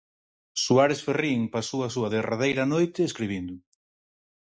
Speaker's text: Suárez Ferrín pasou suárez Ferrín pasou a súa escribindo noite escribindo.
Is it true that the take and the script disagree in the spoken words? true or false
true